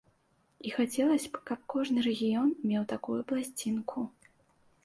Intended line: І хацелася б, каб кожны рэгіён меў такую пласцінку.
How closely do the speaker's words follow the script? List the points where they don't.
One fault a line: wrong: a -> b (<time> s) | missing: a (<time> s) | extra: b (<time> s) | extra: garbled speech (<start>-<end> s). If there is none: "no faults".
no faults